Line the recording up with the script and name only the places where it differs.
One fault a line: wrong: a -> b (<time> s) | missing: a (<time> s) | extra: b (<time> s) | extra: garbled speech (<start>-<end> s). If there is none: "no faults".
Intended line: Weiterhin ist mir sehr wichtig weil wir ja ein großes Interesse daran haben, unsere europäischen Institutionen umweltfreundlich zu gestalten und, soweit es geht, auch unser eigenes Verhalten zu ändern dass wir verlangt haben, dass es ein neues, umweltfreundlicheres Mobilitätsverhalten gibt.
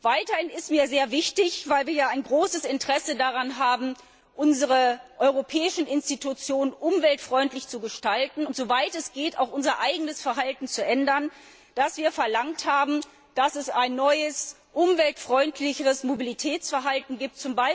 no faults